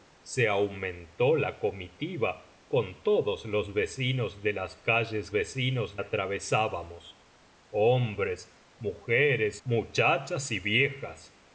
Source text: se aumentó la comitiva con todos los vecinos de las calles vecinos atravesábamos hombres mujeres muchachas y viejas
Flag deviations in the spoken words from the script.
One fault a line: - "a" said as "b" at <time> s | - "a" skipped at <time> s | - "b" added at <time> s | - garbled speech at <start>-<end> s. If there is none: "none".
none